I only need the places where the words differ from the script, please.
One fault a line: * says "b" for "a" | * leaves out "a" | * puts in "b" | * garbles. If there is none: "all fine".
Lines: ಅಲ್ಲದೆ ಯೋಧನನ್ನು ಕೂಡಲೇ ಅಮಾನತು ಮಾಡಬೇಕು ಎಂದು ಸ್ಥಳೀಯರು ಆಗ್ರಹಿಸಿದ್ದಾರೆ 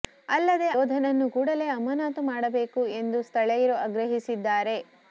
all fine